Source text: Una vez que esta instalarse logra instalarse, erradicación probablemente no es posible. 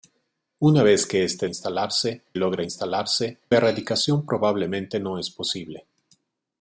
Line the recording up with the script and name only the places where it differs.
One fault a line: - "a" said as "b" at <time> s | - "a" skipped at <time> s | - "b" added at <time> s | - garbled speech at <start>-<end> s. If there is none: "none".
none